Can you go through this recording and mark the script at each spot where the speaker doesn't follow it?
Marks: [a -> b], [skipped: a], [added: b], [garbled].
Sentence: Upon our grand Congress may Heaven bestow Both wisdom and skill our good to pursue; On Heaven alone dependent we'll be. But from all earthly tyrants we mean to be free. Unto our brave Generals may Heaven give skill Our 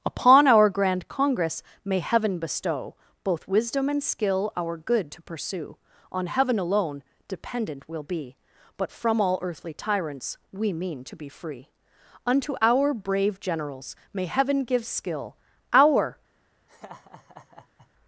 Upon our grand Congress may Heaven bestow Both wisdom and skill our good to pursue; On Heaven alone dependent we'll be. But from all earthly tyrants we mean to be free. Unto our brave Generals may Heaven give skill Our